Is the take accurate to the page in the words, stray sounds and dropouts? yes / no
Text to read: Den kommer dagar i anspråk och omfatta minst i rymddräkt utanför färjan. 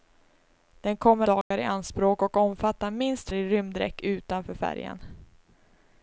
no